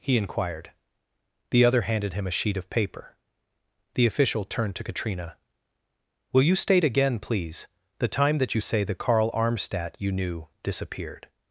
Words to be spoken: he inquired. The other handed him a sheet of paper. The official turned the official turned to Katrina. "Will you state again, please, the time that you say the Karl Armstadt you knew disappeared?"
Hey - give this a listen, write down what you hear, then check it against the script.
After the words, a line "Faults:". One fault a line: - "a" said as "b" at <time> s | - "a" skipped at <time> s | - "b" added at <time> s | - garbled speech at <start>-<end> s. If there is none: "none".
he inquired. The other handed him a sheet of paper. The official turned to Katrina. "Will you state again, please, the time that you say the Karl Armstadt you knew disappeared?"
Faults:
- "the official turned" skipped at 4.8 s